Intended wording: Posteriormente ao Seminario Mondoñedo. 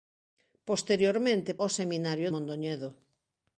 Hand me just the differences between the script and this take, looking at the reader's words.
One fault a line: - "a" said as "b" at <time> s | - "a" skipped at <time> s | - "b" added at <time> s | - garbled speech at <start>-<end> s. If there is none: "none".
none